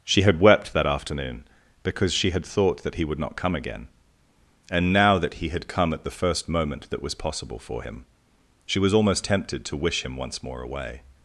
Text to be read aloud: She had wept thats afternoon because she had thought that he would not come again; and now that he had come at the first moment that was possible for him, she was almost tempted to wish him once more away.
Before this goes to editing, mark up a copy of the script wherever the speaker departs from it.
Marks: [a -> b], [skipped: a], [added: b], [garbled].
She had wept [thats -> that] afternoon because she had thought that he would not come again; and now that he had come at the first moment that was possible for him, she was almost tempted to wish him once more away.